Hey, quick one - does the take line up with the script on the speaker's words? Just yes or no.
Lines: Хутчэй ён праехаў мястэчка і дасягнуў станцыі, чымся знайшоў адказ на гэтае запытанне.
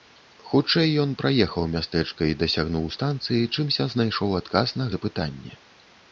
no